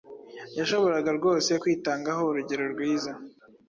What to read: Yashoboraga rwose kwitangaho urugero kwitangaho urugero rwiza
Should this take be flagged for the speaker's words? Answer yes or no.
yes